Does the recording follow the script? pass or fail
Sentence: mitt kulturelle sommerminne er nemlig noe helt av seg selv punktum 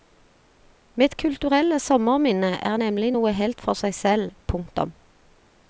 fail